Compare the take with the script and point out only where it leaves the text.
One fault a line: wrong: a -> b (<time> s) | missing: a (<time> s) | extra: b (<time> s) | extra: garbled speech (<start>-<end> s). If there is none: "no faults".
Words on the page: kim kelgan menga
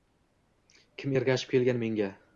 extra: ergashib (1.2 s)